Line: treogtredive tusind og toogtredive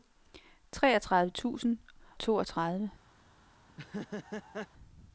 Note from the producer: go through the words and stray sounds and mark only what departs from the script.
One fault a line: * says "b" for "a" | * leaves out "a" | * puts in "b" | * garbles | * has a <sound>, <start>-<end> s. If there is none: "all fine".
* leaves out "og"
* has a laugh, 3.7-4.7 s